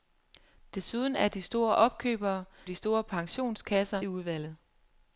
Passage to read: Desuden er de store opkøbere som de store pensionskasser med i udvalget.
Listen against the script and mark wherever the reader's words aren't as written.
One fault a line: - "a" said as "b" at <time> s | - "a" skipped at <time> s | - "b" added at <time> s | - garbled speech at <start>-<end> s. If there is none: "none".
- "som" skipped at 2.5 s
- "med" skipped at 4.0 s